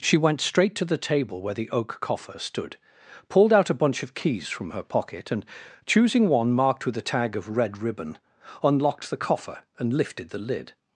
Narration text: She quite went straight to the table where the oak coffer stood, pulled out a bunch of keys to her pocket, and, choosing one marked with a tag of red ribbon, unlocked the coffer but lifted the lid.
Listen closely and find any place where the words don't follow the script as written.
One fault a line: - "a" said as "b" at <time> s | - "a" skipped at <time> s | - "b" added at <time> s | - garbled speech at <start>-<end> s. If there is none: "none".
- "quite" skipped at 0.2 s
- "to" said as "from" at 4.5 s
- "but" said as "and" at 9.8 s